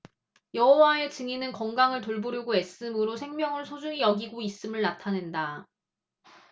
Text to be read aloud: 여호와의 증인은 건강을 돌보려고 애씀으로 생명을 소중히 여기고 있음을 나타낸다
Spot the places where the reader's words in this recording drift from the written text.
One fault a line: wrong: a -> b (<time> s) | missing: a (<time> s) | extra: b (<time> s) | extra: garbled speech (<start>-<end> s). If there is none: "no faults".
no faults